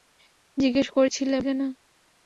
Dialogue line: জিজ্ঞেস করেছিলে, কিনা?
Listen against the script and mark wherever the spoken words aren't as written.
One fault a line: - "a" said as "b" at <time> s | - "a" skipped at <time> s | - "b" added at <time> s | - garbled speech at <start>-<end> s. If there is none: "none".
none